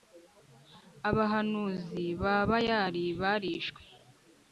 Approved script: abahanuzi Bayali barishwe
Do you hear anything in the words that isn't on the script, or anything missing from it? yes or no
yes